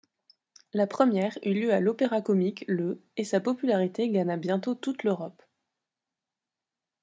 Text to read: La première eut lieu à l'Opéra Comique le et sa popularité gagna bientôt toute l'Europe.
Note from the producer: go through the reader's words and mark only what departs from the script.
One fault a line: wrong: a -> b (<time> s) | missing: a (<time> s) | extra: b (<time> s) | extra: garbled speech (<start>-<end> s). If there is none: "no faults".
no faults